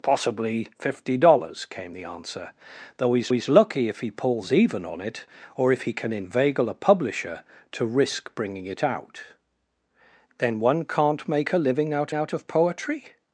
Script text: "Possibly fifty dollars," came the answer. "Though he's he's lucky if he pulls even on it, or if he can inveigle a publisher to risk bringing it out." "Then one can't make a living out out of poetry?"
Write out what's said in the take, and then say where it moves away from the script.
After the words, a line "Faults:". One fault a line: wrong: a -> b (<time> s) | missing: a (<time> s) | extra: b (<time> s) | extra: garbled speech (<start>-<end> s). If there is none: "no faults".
"Possibly fifty dollars," came the answer. "Though he's he's lucky if he pulls even on it, or if he can inveigle a publisher to risk bringing it out." "Then one can't make a living out out of poetry?"
Faults:
no faults